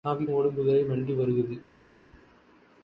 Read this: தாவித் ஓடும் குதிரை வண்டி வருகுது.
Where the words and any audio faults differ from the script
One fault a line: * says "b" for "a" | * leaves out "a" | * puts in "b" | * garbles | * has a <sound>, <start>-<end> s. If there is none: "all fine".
all fine